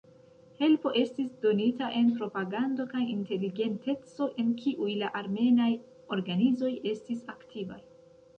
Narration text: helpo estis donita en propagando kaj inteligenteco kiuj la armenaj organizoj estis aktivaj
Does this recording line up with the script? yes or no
no